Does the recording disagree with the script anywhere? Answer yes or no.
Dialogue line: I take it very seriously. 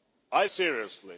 yes